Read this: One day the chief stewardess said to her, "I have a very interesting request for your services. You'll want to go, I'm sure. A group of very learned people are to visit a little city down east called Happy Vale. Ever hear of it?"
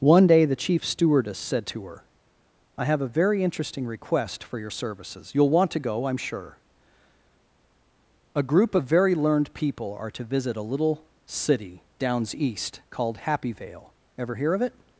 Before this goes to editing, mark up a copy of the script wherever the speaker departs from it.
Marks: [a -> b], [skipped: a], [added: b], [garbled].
One day the chief stewardess said to her, "I have a very interesting request for your services. You'll want to go, I'm sure. A group of very learned people are to visit a little city [down -> downs] east called Happy Vale. Ever hear of it?"